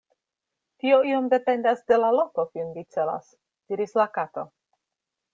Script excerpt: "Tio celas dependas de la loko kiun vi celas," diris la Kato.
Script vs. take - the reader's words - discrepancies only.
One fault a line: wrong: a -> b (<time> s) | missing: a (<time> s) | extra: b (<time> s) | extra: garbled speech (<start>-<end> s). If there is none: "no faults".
wrong: celas -> iom (1.1 s)